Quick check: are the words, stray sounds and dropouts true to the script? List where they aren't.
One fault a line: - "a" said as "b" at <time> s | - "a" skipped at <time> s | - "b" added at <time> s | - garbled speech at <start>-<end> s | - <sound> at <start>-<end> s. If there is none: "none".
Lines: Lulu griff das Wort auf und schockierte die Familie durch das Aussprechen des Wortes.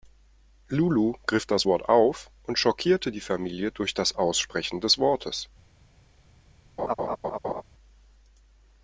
- laugh at 6.8-7.6 s